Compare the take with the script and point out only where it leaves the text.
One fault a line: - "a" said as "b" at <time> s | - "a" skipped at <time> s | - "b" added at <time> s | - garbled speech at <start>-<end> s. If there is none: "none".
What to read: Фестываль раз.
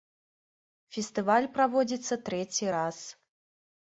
- "праводзіцца трэці" added at 1.6 s